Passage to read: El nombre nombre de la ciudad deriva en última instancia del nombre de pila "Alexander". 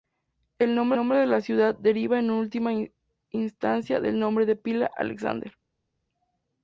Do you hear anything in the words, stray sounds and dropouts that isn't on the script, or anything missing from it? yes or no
no